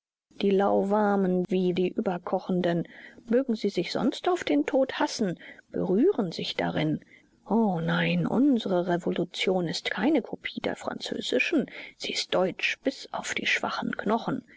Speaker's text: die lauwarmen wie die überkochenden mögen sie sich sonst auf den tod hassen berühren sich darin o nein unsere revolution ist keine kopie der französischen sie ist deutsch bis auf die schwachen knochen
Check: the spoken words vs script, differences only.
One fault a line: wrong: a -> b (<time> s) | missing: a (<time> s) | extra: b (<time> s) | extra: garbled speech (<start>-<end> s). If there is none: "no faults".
no faults